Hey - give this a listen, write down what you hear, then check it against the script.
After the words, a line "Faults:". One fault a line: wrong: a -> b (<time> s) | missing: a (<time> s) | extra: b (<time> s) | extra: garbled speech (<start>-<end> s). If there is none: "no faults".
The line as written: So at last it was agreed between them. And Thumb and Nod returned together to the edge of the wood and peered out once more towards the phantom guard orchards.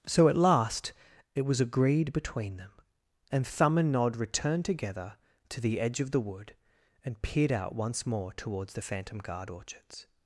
So at last it was agreed between them. And Thumb and Nod returned together to the edge of the wood and peered out once more towards the phantom guard orchards.
Faults:
no faults